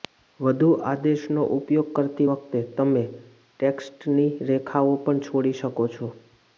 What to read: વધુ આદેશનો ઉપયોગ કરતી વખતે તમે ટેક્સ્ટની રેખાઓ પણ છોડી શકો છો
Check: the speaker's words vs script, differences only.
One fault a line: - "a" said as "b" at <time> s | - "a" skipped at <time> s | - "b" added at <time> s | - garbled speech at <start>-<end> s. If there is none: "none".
none